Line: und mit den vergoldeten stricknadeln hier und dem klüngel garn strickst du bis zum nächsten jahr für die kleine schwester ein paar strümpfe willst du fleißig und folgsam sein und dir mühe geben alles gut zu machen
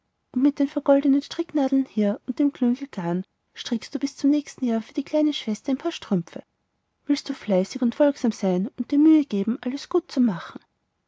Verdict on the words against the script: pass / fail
pass